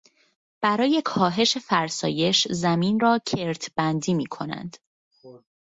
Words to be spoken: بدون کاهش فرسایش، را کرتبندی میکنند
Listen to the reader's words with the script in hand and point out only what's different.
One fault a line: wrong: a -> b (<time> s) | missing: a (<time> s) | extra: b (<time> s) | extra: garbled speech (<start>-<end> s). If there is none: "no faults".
wrong: بدون -> برای (0.6 s)
extra: زمین (2.5 s)